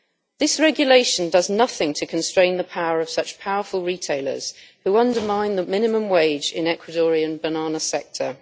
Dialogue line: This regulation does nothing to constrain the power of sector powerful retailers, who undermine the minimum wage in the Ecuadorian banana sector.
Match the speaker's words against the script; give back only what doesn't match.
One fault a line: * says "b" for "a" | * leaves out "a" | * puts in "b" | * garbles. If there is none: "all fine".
* says "such" for "sector"